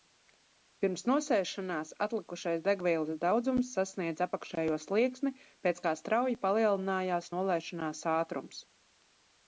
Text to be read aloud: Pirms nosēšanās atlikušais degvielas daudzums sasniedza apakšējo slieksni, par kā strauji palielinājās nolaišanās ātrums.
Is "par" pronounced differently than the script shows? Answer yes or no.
yes